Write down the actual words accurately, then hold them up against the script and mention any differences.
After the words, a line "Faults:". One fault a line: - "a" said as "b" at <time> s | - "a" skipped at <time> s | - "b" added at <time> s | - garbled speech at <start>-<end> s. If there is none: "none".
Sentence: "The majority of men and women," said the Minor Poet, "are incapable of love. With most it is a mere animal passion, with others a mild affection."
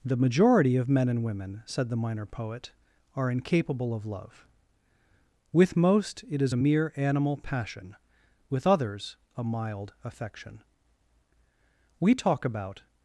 "The majority of men and women," said the Minor Poet, "are incapable of love. With most it is a mere animal passion, with others a mild affection." "We talk about
Faults:
- "We talk about" added at 12.0 s